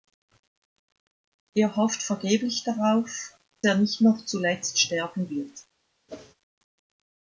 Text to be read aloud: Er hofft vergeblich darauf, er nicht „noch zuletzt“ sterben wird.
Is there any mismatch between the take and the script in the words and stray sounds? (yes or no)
yes